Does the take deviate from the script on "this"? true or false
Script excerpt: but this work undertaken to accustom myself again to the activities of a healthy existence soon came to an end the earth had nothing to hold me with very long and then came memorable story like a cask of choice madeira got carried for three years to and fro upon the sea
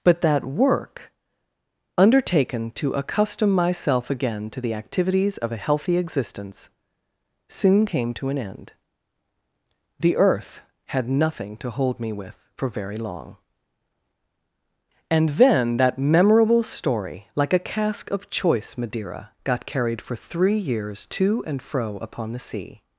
true